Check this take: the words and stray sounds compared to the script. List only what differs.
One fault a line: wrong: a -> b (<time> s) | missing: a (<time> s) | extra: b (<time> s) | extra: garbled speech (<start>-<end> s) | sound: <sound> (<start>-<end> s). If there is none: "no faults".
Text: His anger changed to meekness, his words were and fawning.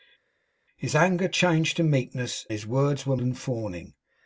no faults